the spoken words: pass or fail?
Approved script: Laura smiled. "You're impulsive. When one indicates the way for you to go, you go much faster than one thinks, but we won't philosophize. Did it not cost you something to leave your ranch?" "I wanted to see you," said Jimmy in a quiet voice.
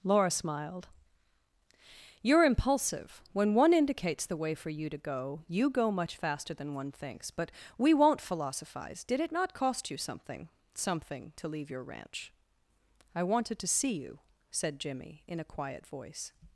fail